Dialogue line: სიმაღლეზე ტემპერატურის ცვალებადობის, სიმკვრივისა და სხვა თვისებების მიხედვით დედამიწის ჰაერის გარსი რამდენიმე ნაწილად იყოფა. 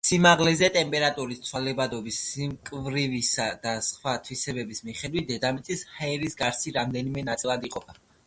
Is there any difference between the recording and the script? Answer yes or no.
no